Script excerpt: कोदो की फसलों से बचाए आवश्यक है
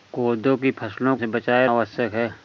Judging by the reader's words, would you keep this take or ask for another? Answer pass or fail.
pass